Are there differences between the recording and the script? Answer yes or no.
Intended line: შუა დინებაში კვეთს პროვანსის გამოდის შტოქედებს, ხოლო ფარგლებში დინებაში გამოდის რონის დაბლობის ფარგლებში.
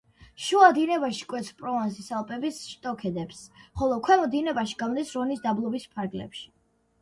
yes